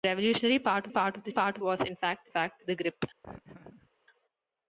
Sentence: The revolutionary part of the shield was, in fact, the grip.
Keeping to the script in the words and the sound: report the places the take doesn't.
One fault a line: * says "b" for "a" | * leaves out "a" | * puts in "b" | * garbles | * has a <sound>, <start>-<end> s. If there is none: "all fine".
* puts in "part"
* says "part" for "shield"
* puts in "fact"
* has a laugh, 3.2-3.9 s